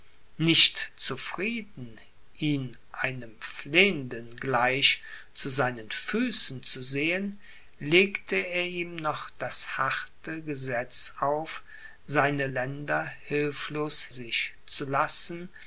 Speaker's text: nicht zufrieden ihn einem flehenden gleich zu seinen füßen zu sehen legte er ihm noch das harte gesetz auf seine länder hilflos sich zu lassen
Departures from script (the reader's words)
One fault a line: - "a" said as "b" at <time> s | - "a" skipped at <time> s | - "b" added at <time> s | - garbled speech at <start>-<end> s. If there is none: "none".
none